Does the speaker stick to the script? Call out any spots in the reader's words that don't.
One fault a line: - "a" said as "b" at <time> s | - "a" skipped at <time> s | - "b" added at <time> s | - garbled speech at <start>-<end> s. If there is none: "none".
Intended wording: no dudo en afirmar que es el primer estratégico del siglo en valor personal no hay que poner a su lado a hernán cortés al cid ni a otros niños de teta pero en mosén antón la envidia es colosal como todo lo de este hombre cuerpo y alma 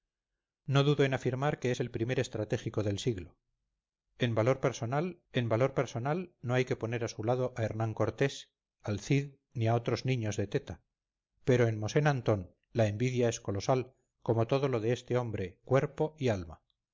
- "en valor personal" added at 5.3 s